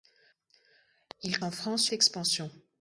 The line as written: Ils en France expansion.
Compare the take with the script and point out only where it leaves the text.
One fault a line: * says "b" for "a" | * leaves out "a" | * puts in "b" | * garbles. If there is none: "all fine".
all fine